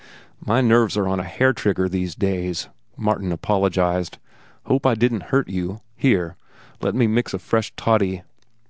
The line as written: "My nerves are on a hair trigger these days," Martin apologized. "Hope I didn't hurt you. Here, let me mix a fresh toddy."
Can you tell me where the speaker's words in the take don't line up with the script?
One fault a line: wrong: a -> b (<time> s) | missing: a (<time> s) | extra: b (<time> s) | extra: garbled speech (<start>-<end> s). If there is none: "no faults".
no faults